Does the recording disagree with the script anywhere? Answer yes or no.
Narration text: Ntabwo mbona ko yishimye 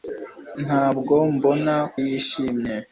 yes